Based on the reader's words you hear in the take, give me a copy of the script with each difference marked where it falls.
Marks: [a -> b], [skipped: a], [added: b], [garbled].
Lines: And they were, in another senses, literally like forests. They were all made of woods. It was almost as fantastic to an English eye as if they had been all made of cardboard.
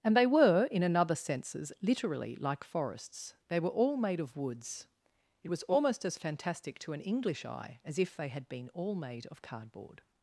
And they were, in another senses, literally like forests. They were all made of woods. It was almost as fantastic to an English eye as if they had been all made of cardboard.